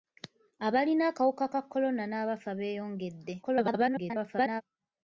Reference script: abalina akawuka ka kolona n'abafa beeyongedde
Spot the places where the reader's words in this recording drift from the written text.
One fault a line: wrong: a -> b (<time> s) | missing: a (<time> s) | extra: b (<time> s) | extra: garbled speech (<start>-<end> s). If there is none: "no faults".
extra: garbled speech (3.4-4.6 s)